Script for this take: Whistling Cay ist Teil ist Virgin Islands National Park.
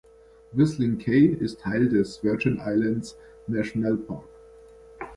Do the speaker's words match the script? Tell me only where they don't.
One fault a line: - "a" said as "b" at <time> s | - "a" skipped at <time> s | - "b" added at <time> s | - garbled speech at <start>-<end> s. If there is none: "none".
- "ist" said as "des" at 1.9 s